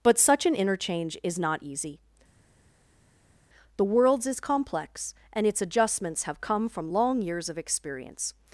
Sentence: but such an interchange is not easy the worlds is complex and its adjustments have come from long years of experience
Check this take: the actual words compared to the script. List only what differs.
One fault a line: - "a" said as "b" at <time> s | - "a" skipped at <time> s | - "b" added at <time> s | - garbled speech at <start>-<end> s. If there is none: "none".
none